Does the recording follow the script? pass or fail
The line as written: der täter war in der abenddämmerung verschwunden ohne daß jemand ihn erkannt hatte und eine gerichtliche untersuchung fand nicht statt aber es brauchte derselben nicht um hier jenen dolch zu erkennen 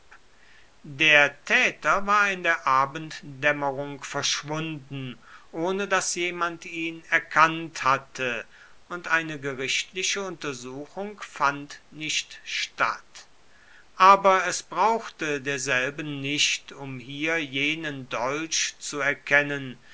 pass